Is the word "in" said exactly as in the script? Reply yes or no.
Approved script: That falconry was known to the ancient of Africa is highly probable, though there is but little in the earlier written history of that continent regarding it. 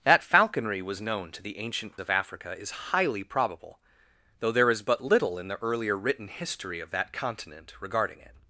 yes